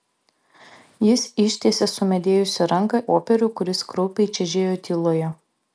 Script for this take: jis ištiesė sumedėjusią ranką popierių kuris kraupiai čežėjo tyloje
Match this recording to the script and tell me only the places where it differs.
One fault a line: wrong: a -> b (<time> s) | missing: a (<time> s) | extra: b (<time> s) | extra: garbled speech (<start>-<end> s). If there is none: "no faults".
no faults